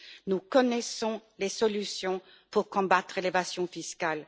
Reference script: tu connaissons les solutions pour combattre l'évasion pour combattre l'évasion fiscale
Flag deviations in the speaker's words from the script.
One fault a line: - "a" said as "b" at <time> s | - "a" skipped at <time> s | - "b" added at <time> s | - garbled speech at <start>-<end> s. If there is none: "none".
- "tu" said as "nous" at 0.3 s
- "pour combattre l'évasion" skipped at 3.7 s